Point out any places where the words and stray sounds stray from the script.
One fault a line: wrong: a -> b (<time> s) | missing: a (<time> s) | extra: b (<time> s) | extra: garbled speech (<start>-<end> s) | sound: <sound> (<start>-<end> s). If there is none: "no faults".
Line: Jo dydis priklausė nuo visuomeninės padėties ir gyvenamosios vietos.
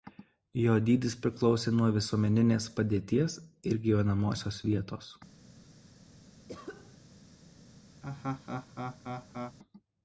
sound: cough (6.5-7.0 s)
sound: laugh (8.0-9.6 s)